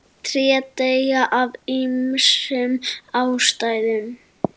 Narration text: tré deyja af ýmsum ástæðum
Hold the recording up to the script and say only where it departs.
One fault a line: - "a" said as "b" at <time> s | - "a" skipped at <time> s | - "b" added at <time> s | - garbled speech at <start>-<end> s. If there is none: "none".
none